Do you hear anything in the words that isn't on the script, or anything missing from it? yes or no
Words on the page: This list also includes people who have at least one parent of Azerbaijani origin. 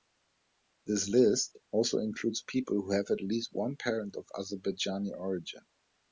no